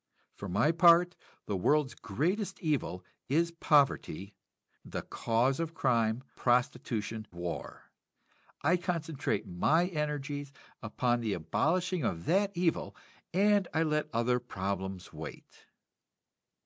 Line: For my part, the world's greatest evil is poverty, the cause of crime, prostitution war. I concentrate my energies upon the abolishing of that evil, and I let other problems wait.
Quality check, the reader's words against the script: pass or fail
pass